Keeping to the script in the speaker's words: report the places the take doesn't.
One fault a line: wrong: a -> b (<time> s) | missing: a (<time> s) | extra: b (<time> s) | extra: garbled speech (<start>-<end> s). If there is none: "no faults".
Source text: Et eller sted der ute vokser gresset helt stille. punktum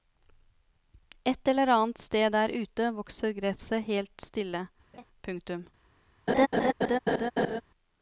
extra: annet (1.7 s)